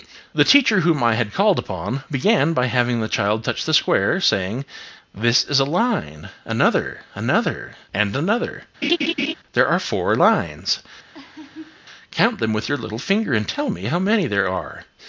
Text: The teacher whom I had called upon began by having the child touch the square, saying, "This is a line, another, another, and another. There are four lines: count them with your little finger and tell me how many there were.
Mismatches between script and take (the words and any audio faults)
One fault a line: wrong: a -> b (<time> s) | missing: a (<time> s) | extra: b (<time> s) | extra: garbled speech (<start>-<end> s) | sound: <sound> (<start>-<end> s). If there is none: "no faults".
sound: laugh (8.8-9.3 s)
sound: laugh (11.1-11.8 s)
wrong: were -> are (14.5 s)